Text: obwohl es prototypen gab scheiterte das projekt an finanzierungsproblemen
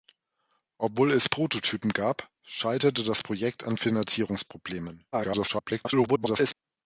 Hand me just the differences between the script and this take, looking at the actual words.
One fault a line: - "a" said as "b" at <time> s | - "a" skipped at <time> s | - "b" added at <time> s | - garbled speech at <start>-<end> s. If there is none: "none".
- garbled speech at 5.1-6.5 s